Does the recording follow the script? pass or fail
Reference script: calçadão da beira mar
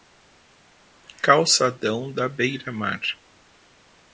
pass